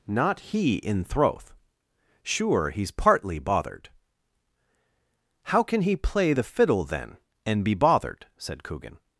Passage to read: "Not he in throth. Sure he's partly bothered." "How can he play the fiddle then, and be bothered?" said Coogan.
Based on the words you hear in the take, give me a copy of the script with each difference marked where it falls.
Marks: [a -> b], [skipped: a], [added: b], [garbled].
"Not he in throth. Sure he's partly bothered." "How can he play the fiddle then, and be bothered?" said Coogan.